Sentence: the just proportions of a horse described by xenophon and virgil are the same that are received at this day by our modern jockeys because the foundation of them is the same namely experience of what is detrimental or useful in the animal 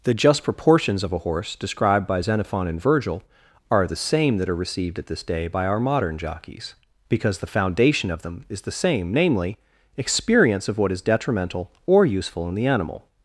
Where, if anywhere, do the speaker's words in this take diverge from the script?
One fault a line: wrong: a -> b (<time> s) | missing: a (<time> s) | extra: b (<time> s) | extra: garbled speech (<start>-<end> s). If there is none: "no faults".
no faults